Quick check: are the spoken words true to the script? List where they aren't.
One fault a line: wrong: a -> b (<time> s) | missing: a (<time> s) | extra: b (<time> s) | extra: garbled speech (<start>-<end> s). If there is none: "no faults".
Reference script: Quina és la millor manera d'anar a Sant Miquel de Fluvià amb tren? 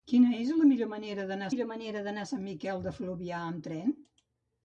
extra: millor manera d'anar (1.5 s)